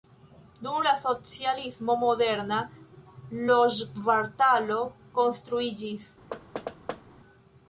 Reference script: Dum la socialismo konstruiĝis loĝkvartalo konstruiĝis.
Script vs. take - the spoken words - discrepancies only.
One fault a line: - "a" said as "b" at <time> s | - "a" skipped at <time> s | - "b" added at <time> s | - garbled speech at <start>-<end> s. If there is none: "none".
- "konstruiĝis" said as "moderna" at 2.0 s